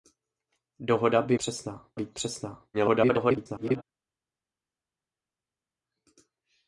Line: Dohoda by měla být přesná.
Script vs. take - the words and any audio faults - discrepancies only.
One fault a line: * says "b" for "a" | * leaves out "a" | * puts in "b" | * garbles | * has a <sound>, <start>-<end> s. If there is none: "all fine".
* says "přesná" for "měla"
* garbles